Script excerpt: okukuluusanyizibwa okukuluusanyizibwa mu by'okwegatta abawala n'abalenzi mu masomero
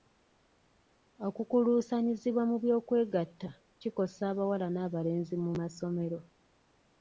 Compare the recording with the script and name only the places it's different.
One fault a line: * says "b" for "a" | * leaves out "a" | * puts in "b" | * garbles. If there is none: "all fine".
* leaves out "okukuluusanyizibwa"
* puts in "kikosa"